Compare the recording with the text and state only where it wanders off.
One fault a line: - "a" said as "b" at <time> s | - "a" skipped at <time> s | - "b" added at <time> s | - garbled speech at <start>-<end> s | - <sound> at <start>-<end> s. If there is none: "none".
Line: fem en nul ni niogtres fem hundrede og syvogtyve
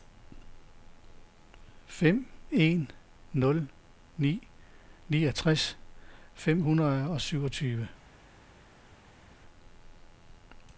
none